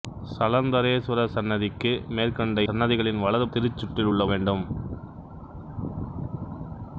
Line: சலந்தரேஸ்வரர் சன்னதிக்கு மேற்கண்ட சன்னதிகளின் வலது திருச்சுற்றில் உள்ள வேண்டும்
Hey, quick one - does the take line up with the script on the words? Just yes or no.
yes